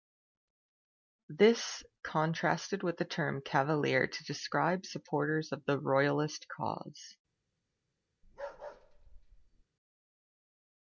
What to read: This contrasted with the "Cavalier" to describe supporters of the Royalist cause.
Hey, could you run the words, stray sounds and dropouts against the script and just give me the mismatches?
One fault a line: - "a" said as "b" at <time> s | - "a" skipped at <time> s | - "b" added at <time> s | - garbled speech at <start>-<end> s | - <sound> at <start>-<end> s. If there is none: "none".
- "term" added at 3.0 s
- bark at 8.2-9.6 s